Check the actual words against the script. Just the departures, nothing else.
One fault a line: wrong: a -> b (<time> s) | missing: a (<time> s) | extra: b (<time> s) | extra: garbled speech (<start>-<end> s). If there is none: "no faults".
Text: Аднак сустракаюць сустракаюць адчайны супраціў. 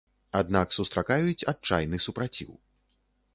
missing: сустракаюць (1.5 s)